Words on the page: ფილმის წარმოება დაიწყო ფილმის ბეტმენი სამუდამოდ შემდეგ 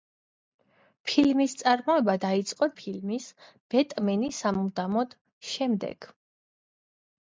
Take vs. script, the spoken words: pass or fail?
pass